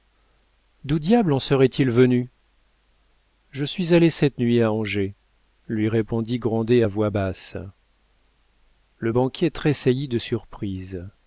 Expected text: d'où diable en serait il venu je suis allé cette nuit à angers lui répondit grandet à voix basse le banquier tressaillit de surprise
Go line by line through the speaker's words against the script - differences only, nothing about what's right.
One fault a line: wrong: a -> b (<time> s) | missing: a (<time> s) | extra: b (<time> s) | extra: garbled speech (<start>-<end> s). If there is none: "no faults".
no faults